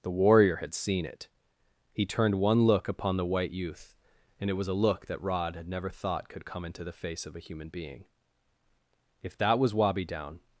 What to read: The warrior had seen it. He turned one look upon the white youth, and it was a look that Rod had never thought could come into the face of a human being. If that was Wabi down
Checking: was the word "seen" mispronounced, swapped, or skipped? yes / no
no